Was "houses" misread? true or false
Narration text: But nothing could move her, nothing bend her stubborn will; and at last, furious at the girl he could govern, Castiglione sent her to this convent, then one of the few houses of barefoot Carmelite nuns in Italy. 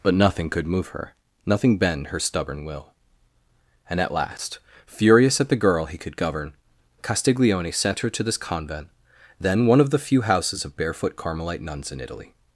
false